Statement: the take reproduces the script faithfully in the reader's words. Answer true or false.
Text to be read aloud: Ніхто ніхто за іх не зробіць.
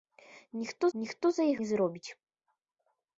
true